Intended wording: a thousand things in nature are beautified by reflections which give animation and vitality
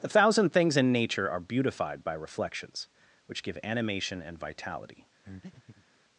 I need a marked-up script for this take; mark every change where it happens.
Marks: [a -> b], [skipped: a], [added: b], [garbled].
[a -> the] thousand things in nature are beautified by reflections which give animation and vitality